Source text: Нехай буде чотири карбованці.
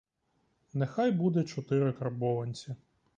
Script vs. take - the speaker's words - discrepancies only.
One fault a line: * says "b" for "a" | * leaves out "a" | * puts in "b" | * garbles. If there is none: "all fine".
all fine